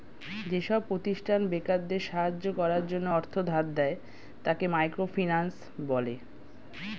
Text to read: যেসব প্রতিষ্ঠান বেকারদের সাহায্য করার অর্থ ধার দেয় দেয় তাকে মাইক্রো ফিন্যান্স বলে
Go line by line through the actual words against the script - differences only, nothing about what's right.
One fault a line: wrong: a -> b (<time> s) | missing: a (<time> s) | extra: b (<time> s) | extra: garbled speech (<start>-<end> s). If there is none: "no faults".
extra: জন্য (2.9 s)
missing: দেয় (4.0 s)